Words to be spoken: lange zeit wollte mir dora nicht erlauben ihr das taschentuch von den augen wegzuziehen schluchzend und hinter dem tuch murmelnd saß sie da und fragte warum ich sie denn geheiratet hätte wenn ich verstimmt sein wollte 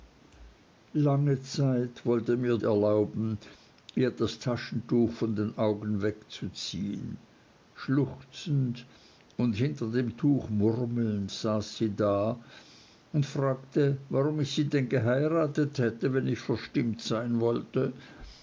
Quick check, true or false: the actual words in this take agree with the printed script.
false